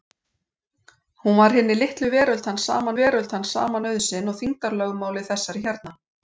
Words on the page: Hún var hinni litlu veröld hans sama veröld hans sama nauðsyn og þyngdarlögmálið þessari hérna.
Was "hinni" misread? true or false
false